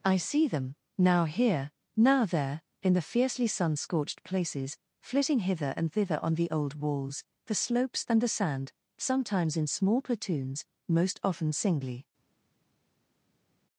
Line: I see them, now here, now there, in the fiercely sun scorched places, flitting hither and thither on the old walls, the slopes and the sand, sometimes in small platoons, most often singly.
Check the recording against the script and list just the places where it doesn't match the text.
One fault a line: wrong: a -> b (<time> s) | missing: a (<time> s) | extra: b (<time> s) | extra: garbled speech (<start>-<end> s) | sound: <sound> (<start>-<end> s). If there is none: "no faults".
no faults